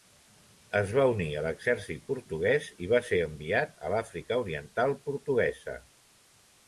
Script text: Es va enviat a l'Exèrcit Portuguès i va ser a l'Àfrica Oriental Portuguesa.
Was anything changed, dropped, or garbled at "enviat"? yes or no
yes